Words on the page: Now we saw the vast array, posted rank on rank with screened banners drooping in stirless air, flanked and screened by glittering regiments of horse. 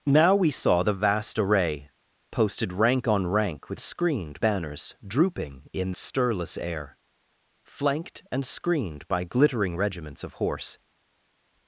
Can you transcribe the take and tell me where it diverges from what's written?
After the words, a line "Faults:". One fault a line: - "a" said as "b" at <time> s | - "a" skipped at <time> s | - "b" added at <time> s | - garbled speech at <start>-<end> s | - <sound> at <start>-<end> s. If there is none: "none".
Now we saw the vast array, posted rank on rank with screened banners drooping in stirless air, flanked and screened by glittering regiments of horse.
Faults:
none